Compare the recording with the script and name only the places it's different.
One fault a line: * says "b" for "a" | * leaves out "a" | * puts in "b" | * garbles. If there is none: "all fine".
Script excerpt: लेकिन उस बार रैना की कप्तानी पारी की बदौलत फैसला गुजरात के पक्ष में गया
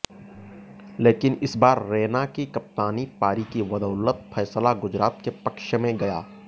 * says "इस" for "उस"